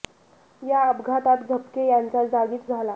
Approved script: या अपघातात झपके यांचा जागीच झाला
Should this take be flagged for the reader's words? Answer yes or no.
no